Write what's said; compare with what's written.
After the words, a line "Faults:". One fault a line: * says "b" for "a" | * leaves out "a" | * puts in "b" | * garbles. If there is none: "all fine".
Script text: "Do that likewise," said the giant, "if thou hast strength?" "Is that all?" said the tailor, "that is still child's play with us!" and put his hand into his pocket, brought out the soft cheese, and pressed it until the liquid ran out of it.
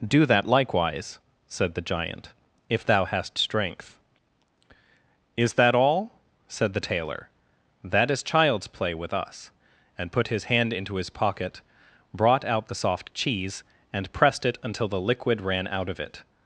"Do that likewise," said the giant, "if thou hast strength?" "Is that all?" said the tailor, "that is child's play with us!" and put his hand into his pocket, brought out the soft cheese, and pressed it until the liquid ran out of it.
Faults:
* leaves out "still"